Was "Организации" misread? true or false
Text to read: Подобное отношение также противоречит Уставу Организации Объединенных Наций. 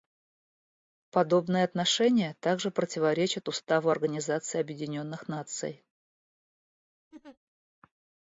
false